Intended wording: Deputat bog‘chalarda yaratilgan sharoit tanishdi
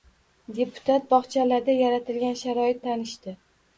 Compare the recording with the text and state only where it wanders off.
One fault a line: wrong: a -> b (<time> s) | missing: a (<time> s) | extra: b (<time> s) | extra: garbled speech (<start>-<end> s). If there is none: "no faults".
no faults